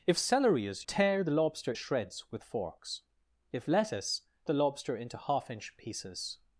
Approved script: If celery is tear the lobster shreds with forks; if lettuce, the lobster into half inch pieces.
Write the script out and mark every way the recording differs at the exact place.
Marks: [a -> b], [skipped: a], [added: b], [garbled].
If celery is tear the lobster shreds with forks; if lettuce, the lobster into half inch pieces.